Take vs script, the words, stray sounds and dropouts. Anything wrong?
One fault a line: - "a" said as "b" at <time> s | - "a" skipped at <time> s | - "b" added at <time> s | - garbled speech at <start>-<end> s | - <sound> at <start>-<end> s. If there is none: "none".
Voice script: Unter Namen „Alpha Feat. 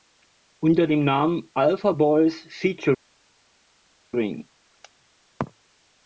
- "dem" added at 0.9 s
- "Boys" added at 1.9 s